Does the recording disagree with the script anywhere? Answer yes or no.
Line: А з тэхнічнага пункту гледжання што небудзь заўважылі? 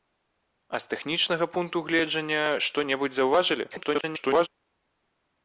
yes